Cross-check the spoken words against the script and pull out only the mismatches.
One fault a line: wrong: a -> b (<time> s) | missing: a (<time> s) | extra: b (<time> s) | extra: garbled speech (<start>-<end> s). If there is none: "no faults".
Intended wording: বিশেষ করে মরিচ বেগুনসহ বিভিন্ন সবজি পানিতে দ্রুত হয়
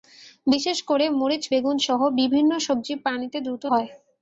no faults